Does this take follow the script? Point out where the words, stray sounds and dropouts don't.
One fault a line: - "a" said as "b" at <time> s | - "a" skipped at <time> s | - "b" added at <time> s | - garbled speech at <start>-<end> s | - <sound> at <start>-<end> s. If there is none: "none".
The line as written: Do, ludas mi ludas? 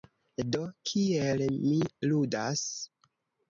- "ludas" said as "kiel" at 0.9 s